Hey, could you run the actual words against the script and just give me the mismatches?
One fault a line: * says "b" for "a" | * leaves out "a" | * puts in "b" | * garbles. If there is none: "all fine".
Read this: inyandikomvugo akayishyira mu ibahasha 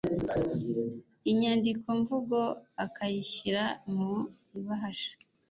all fine